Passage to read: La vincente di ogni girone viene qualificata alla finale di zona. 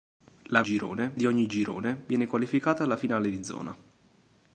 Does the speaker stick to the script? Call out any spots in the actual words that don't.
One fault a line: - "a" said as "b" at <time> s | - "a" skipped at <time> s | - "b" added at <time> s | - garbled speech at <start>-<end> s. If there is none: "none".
- "vincente" said as "girone" at 0.6 s